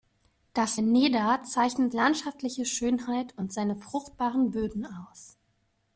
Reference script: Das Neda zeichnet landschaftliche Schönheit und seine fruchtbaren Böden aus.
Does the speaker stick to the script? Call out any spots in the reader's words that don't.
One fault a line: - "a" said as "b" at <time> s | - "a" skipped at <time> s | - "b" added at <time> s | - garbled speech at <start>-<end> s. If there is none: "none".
none